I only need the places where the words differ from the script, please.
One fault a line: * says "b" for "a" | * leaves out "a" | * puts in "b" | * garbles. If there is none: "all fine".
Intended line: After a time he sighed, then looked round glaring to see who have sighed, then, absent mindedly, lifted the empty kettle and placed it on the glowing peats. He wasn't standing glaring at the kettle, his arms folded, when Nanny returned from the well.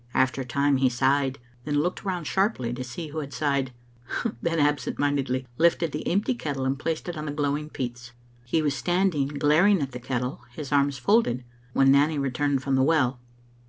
* says "sharply" for "glaring"
* says "had" for "have"
* says "was" for "wasn't"